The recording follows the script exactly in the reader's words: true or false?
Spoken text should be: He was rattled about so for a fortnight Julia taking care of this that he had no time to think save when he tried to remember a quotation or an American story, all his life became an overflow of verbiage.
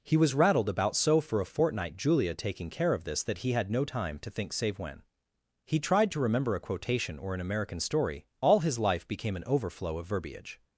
true